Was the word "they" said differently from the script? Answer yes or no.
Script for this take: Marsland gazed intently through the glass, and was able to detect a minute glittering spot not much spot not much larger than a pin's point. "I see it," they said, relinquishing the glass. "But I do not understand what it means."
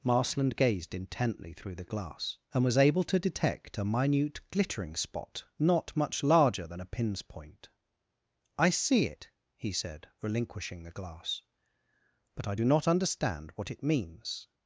yes